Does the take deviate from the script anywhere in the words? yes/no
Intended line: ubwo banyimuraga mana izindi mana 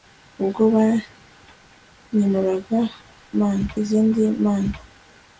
no